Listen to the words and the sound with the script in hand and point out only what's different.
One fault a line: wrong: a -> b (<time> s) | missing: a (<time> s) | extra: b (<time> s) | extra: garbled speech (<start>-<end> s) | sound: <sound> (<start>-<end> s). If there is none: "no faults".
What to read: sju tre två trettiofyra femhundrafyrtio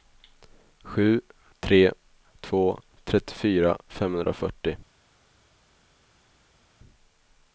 no faults